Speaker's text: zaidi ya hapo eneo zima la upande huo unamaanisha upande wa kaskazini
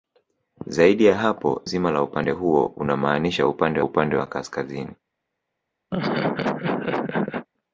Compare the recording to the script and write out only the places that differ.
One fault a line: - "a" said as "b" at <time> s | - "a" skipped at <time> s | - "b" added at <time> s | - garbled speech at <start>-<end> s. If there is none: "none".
- "eneo" skipped at 1.6 s
- "upande" added at 3.8 s